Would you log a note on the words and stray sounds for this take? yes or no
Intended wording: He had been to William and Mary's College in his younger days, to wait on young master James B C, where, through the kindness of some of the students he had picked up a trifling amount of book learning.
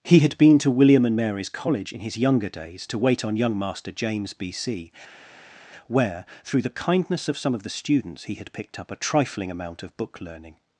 no